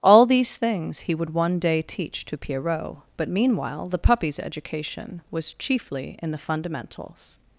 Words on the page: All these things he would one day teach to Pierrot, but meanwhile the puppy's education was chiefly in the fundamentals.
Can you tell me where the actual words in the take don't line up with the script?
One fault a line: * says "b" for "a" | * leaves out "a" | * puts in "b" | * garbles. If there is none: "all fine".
all fine